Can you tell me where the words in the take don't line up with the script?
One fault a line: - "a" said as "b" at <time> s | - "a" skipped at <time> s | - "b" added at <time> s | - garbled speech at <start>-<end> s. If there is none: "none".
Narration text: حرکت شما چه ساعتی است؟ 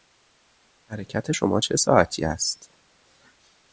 none